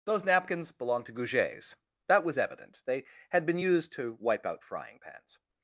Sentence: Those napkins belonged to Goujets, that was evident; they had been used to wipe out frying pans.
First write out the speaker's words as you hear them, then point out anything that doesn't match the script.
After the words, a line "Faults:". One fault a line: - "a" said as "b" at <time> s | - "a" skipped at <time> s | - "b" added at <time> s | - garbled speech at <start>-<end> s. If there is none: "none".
Those napkins belonged to Goujets, that was evident; they had been used to wipe out frying pans.
Faults:
none